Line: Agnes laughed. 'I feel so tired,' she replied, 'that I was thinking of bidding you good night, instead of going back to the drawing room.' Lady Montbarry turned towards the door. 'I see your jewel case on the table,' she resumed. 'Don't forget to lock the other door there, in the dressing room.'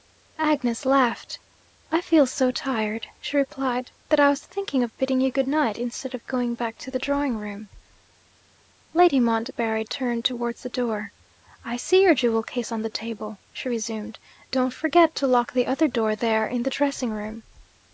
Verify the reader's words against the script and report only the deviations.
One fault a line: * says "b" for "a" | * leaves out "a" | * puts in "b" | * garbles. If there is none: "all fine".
all fine